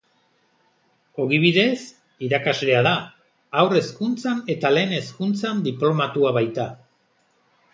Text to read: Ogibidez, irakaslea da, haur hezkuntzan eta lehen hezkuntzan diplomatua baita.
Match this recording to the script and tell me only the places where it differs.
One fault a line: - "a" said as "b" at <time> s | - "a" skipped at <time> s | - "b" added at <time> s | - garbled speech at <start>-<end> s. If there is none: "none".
none